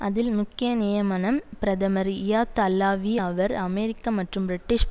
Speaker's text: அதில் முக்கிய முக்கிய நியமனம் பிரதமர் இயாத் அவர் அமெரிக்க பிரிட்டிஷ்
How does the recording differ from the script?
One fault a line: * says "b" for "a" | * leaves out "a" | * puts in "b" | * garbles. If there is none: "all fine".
* leaves out "முக்கிய"
* puts in "அல்லாவி"
* puts in "மற்றும்"